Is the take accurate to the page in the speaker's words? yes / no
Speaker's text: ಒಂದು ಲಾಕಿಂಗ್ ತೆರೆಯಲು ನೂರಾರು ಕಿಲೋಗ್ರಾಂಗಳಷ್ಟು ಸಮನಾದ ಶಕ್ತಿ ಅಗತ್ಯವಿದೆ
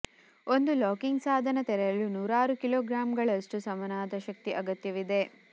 no